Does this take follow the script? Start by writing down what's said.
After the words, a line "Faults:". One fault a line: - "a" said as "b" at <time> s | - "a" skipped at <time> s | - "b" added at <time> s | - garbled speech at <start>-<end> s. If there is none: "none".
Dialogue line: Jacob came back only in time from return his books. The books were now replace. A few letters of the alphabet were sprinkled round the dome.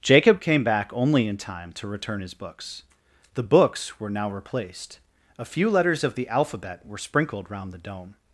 Jacob came back only in time to return his books. The books were now replaced. A few letters of the alphabet were sprinkled round the dome.
Faults:
- "from" said as "to" at 1.7 s
- "replace" said as "replaced" at 4.3 s